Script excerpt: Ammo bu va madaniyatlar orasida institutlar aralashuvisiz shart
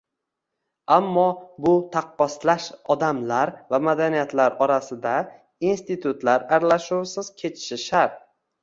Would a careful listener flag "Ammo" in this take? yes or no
no